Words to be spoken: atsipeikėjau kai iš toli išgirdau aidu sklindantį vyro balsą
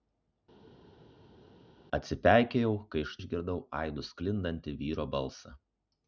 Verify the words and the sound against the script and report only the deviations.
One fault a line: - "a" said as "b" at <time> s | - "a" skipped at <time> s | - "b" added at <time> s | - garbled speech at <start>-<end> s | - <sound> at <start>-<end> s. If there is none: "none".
- "toli" skipped at 3.2 s